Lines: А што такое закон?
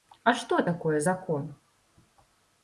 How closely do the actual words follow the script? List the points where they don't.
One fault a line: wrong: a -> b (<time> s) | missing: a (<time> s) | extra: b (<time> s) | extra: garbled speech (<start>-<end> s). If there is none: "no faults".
no faults